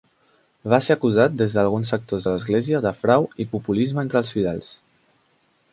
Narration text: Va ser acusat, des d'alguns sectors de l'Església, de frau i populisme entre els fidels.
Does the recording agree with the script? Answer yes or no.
yes